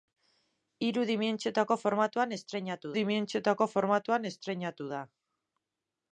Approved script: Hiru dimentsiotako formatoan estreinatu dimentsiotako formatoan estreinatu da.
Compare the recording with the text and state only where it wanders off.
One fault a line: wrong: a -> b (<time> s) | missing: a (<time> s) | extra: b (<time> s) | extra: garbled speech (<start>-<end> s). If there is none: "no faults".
no faults